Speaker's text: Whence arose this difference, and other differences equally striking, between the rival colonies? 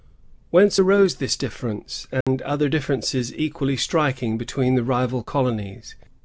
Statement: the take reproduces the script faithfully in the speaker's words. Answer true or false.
true